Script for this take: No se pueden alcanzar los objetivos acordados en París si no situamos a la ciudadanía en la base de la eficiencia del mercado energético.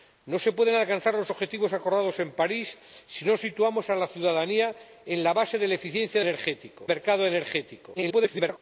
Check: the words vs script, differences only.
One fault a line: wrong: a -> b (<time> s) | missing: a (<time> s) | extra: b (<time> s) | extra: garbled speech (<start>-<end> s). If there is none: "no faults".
wrong: del -> energético (6.2 s)
extra: garbled speech (8.0-8.6 s)